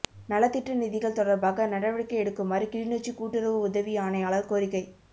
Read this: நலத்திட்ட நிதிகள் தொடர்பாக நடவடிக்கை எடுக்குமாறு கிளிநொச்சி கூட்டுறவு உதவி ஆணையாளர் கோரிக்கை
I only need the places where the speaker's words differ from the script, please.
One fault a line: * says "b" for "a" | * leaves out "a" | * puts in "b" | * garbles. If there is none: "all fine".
all fine